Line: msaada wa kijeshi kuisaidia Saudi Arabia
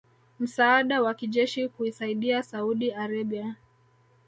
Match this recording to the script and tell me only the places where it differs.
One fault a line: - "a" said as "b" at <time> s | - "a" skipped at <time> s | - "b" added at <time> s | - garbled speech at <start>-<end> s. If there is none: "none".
none